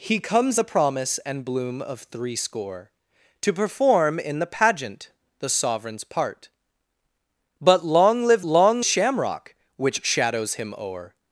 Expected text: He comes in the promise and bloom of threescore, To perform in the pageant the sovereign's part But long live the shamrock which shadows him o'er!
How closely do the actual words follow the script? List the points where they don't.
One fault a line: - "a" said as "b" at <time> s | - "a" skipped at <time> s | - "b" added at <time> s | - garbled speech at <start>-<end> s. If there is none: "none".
- "in" skipped at 0.6 s
- "the" said as "long" at 8.5 s